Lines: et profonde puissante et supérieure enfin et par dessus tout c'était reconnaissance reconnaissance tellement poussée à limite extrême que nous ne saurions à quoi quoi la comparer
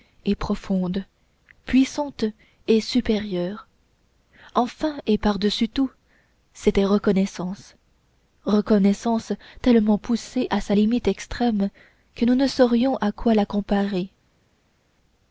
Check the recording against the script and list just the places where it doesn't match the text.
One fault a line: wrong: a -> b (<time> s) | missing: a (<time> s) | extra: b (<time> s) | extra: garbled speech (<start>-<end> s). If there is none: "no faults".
extra: sa (10.6 s)
missing: quoi (13.3 s)